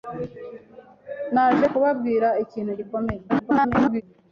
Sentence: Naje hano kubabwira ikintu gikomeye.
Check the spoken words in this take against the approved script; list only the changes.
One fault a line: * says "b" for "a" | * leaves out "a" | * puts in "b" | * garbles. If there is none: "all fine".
* leaves out "hano"
* garbles